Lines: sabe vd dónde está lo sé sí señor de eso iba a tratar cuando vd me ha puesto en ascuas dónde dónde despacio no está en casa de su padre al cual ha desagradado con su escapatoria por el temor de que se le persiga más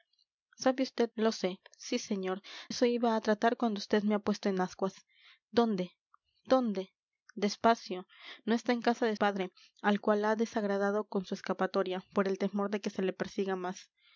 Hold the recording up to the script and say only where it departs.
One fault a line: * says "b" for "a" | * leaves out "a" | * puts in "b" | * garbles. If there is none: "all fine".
* leaves out "dónde está"
* leaves out "de"
* leaves out "su"